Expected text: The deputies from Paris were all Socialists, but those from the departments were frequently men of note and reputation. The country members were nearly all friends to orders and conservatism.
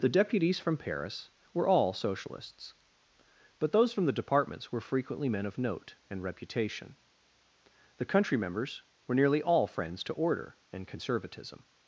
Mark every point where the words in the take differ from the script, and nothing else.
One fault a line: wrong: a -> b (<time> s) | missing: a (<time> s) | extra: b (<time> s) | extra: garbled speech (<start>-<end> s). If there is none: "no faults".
wrong: orders -> order (10.1 s)